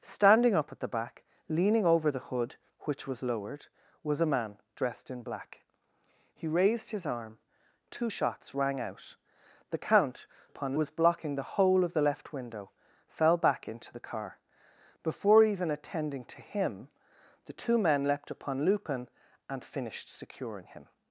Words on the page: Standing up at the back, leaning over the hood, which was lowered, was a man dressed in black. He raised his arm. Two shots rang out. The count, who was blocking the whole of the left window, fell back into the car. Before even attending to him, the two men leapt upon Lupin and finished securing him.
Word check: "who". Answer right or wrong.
wrong